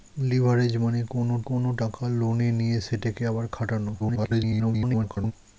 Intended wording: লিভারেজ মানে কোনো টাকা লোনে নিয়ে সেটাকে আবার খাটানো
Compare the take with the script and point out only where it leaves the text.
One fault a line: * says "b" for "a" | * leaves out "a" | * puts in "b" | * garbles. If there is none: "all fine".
* puts in "কোনো"
* garbles